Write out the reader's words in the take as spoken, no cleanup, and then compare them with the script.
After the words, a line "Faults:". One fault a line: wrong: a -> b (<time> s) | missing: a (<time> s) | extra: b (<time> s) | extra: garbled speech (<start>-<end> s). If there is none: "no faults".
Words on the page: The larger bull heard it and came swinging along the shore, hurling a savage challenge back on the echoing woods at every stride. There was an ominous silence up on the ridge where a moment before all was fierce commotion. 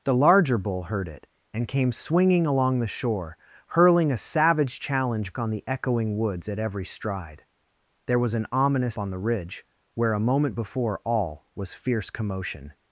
The larger bull heard it and came swinging along the shore, hurling a savage challenge on the echoing woods at every stride. There was an ominous on the ridge where a moment before all was fierce commotion.
Faults:
missing: back (5.3 s)
missing: silence up (9.0 s)